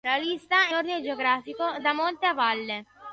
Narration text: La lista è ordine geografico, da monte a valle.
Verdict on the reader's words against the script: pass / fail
pass